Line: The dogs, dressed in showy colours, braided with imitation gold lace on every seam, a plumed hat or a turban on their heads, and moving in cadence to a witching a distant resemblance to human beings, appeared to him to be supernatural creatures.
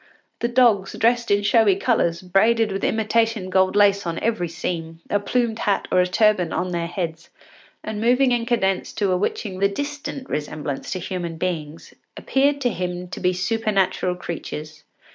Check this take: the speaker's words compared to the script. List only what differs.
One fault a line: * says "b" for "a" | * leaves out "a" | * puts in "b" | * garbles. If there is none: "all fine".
all fine